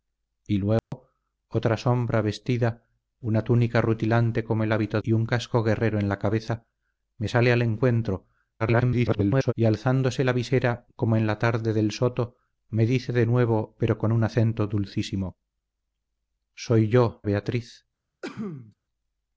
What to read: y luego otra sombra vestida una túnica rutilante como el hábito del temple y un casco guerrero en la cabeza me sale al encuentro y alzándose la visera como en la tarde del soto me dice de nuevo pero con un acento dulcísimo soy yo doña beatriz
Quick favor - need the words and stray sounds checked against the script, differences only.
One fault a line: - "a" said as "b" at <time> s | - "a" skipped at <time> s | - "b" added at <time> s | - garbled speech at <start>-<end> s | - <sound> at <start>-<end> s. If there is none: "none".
- dropout at 0.8-0.9 s
- "del temple" skipped at 5.0 s
- garbled speech at 8.6-9.5 s
- "doña" skipped at 17.2 s
- sneeze at 18.2-18.7 s